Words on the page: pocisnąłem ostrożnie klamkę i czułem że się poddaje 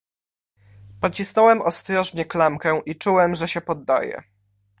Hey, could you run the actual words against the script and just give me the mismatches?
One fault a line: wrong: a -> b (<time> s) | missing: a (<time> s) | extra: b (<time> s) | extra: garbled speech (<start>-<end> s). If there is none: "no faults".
no faults